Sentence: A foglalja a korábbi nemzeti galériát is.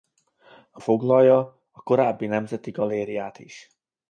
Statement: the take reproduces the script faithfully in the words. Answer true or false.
true